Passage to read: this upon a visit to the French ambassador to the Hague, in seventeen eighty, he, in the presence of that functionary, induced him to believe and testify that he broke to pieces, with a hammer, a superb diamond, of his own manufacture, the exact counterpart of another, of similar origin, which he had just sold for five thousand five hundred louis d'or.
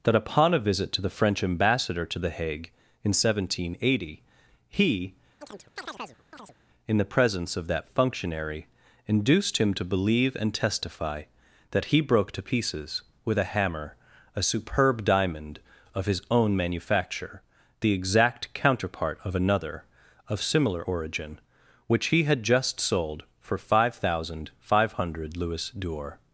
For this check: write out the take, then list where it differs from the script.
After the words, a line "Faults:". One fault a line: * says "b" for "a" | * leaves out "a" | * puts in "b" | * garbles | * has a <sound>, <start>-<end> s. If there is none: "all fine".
that upon a visit to the French ambassador to the Hague, in seventeen eighty, he, in the presence of that functionary, induced him to believe and testify that he broke to pieces, with a hammer, a superb diamond, of his own manufacture, the exact counterpart of another, of similar origin, which he had just sold for five thousand five hundred louis d'or.
Faults:
* says "that" for "this"
* has a chirp, 5.4-6.6 s